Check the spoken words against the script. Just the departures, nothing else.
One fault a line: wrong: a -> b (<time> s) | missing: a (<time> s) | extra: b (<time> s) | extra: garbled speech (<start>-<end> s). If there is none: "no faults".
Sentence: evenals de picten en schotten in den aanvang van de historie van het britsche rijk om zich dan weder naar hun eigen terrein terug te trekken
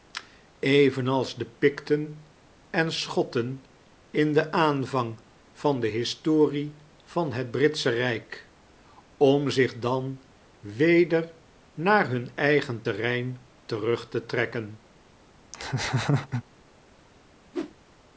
no faults